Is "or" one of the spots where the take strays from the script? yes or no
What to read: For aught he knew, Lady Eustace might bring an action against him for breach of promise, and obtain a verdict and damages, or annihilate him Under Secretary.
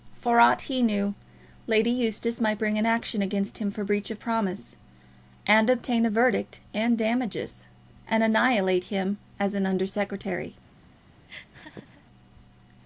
yes